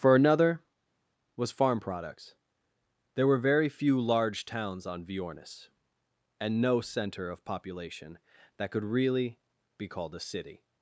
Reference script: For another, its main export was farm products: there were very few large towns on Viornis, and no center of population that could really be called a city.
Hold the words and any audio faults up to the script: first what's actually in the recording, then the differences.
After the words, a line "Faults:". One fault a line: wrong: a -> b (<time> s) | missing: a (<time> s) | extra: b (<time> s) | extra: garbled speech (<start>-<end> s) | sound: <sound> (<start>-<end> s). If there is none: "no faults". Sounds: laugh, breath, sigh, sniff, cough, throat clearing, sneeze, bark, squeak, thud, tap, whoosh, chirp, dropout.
For another, was farm products: there were very few large towns on Viornis, and no center of population that could really be called a city.
Faults:
missing: its main export (0.6 s)